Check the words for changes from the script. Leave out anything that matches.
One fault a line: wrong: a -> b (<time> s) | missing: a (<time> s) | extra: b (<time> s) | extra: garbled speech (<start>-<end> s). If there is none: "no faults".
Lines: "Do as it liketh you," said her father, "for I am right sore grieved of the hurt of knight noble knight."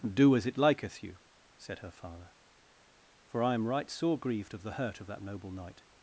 wrong: knight -> that (5.1 s)